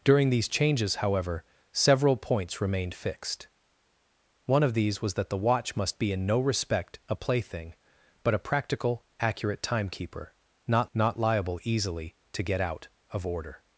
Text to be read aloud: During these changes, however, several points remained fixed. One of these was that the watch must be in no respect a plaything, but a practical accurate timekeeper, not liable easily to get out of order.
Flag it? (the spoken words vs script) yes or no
yes